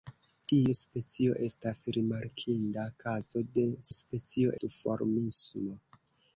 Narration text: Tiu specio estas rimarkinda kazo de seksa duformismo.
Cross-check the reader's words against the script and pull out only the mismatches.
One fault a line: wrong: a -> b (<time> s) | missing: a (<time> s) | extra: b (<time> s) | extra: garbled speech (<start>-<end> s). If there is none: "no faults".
wrong: seksa -> specio (4.0 s)